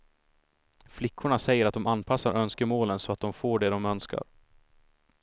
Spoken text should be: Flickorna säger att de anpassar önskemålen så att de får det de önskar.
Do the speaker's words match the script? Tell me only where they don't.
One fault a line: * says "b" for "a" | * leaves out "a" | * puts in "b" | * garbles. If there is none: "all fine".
all fine